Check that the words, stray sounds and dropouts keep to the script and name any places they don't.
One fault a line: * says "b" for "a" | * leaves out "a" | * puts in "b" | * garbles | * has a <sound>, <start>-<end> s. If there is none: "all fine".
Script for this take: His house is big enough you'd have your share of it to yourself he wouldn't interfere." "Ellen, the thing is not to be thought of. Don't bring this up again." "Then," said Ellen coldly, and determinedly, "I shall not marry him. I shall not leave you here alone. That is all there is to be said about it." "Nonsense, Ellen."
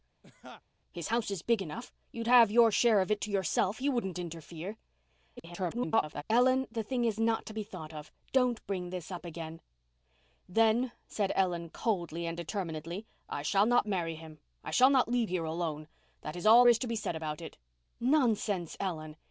* has a laugh, 0.2-0.6 s
* garbles
* leaves out "you"
* leaves out "there"